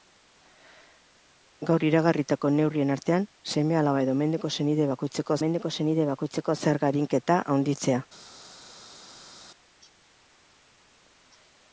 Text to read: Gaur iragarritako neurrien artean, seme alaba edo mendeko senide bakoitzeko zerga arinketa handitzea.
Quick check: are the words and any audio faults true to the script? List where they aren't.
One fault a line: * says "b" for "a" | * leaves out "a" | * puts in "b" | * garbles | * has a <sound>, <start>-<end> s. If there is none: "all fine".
* puts in "mendeko senide bakoitzeko"